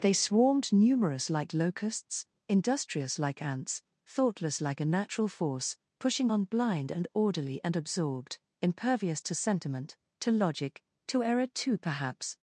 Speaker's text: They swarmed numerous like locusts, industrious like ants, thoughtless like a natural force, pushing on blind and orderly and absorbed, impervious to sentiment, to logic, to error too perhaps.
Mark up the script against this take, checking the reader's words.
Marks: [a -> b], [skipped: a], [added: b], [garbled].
They swarmed numerous like locusts, industrious like ants, thoughtless like a natural force, pushing on blind and orderly and absorbed, impervious to sentiment, to logic, to error too perhaps.